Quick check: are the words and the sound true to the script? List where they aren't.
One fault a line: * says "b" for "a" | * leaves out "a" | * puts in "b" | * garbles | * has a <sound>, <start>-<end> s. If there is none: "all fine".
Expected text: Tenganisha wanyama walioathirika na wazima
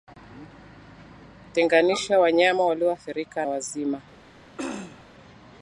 * leaves out "na"
* has a throat clearing, 4.6-5.1 s